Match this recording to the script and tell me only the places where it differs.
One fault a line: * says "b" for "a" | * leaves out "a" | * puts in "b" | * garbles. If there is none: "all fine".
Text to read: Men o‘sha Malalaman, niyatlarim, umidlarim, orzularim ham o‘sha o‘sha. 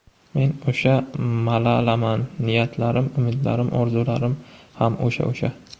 all fine